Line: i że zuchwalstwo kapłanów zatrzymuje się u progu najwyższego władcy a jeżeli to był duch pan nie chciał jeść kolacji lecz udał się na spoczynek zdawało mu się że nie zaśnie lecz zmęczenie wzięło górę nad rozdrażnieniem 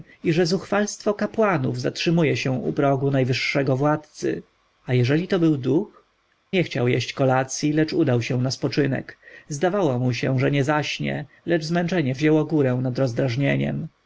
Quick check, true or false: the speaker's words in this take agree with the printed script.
false